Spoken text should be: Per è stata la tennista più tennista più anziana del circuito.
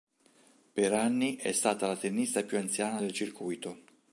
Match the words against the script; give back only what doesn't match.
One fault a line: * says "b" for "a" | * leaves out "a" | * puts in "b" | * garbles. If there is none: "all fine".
* puts in "anni"
* leaves out "tennista più"